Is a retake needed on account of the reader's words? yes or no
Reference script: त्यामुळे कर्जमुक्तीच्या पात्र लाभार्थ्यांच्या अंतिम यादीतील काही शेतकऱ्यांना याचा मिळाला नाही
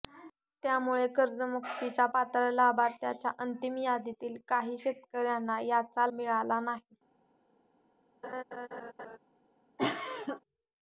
no